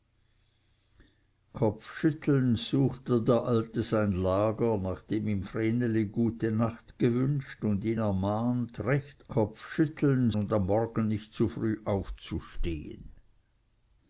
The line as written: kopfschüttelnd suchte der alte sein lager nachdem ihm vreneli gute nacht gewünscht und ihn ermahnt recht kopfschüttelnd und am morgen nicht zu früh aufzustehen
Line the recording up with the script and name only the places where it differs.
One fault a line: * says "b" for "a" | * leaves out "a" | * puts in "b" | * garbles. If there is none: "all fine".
all fine